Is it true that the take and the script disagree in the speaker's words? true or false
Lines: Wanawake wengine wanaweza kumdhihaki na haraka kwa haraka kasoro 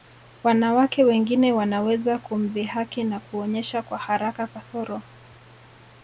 true